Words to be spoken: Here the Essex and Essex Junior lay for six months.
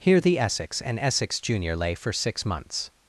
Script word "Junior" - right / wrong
right